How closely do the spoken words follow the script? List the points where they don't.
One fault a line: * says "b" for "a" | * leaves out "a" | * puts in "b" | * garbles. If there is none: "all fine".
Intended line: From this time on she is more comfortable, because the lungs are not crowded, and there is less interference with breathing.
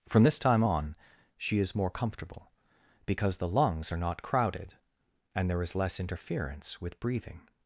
all fine